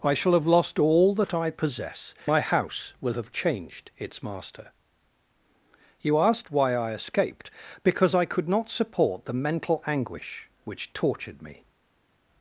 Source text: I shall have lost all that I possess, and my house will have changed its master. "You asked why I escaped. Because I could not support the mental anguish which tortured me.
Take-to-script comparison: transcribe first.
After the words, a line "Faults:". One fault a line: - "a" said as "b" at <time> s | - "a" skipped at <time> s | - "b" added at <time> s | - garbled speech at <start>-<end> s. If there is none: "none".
I shall have lost all that I possess, my house will have changed its master. "You asked why I escaped. Because I could not support the mental anguish which tortured me.
Faults:
- "and" skipped at 2.1 s